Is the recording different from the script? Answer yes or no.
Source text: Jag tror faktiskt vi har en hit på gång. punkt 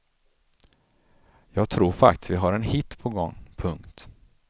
no